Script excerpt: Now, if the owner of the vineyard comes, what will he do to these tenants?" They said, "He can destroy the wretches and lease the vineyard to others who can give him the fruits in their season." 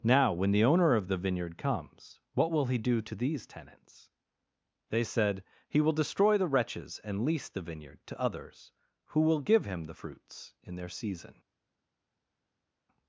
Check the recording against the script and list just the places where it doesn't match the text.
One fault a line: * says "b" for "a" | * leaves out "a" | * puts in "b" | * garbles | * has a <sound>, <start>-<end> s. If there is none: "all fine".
* says "when" for "if"
* says "will" for "can"
* says "will" for "can"